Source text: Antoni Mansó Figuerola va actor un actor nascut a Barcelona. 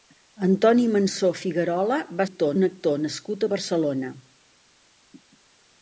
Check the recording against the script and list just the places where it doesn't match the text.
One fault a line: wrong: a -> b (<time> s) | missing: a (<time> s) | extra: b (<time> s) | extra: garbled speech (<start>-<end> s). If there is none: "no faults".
no faults